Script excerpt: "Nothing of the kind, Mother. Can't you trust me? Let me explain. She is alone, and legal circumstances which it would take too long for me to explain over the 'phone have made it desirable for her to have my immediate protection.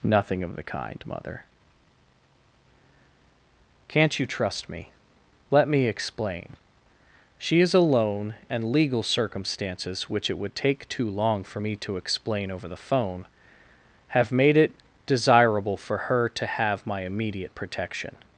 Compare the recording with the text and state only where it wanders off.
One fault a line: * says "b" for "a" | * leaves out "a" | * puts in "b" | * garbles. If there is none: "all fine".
all fine